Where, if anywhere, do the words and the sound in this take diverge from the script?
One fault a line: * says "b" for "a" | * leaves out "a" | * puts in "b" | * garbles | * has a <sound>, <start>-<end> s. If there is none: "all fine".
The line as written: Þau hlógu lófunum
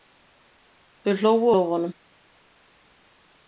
all fine